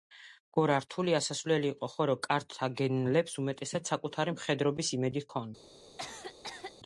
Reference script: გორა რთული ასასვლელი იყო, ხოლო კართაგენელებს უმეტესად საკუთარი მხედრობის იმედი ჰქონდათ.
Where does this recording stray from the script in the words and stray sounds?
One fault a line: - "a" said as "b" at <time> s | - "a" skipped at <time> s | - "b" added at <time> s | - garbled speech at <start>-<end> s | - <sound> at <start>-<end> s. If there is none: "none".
- cough at 6.0-6.7 s